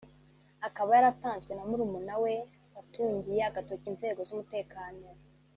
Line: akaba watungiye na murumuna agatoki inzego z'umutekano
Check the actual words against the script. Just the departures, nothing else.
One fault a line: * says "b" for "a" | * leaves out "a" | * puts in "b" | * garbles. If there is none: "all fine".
* says "yaratanzwe" for "watungiye"
* puts in "we watungiye"